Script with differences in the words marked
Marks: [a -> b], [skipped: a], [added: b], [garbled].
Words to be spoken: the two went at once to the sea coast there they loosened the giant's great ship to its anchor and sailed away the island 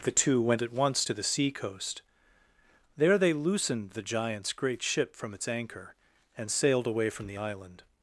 the two went at once to the sea coast there they loosened the giant's great ship [to -> from] its anchor and sailed away [added: from] the island